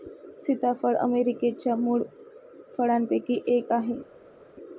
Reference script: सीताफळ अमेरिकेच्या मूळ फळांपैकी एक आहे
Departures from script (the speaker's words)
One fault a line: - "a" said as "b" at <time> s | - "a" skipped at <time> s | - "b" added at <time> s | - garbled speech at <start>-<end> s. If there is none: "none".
none